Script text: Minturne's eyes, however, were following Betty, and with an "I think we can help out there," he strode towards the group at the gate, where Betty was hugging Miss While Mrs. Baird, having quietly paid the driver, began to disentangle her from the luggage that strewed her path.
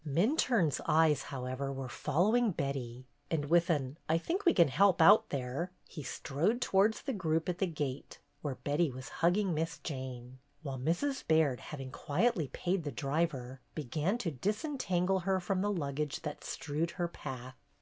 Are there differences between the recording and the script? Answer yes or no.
yes